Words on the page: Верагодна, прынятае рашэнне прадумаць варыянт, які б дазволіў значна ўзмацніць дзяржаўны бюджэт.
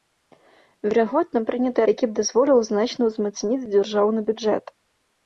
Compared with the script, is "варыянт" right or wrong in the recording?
wrong